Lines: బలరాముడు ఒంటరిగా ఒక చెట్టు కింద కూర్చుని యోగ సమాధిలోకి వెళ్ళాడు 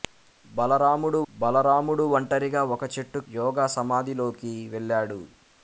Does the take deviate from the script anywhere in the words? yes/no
yes